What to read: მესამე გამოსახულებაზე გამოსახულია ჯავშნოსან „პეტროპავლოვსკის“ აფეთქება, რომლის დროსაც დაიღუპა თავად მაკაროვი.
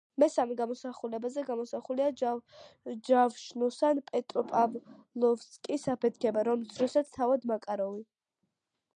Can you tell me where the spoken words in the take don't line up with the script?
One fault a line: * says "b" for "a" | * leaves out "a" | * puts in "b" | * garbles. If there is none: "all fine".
* leaves out "დაიღუპა"